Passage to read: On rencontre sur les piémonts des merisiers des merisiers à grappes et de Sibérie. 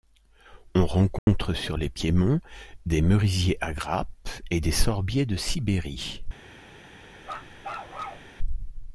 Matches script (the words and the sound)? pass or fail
fail